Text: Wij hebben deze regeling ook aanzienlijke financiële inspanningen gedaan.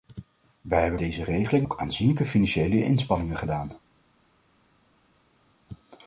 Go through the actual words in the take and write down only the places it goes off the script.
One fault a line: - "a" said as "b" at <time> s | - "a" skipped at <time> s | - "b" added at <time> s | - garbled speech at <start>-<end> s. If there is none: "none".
none